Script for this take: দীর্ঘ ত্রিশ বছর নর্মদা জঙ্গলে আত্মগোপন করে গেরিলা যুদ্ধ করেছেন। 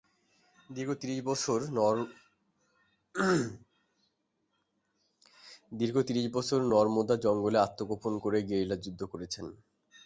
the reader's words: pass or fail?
pass